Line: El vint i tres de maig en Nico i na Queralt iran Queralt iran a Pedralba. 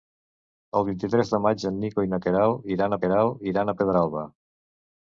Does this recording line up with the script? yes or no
yes